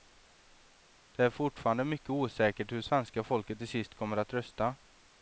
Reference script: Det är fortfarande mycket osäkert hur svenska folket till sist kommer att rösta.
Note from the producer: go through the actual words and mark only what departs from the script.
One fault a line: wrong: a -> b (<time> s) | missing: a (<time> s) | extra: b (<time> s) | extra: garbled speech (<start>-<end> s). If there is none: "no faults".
no faults